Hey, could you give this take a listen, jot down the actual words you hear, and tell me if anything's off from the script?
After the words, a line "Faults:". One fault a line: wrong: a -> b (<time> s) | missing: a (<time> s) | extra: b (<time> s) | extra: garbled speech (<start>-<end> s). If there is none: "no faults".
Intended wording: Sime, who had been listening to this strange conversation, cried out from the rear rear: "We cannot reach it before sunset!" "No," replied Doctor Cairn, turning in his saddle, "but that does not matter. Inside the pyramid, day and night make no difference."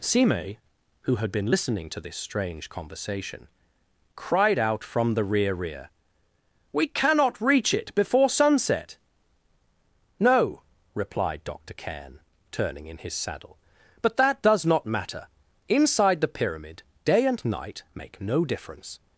Sime, who had been listening to this strange conversation, cried out from the rear rear: "We cannot reach it before sunset!" "No," replied Doctor Cairn, turning in his saddle, "but that does not matter. Inside the pyramid, day and night make no difference."
Faults:
no faults